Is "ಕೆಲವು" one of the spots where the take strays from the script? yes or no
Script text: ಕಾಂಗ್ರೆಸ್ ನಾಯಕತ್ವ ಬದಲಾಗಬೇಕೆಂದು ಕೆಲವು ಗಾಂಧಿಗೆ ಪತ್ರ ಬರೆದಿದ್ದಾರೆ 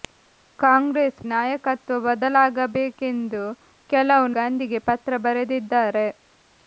no